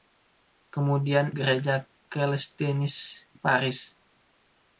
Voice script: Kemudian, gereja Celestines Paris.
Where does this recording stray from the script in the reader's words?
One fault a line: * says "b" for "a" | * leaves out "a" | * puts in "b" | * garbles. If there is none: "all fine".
all fine